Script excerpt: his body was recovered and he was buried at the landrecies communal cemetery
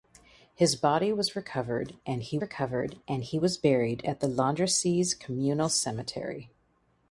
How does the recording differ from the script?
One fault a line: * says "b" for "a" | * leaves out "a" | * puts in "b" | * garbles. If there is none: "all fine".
* puts in "recovered and he"